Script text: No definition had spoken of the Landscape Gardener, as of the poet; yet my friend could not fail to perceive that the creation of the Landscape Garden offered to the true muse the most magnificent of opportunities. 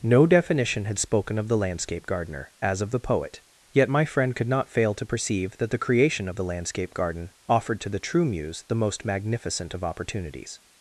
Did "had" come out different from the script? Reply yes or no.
no